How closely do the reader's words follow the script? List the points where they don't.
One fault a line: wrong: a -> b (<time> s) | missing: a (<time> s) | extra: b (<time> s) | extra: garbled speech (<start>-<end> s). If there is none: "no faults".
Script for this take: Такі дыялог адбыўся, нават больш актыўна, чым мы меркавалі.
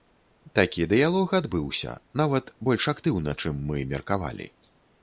no faults